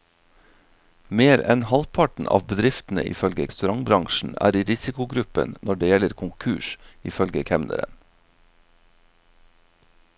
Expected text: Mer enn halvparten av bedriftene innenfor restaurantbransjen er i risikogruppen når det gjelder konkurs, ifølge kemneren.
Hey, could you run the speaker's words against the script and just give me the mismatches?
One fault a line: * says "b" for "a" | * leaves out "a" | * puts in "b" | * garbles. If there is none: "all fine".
* says "ifølge" for "innenfor"